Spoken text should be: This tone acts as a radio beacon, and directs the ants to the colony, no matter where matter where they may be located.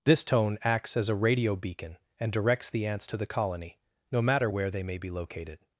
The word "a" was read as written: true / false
true